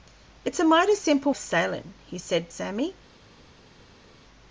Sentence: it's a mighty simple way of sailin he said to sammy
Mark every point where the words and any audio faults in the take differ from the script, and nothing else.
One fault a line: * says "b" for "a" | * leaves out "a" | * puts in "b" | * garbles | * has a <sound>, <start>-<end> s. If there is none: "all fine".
* leaves out "way"
* leaves out "to"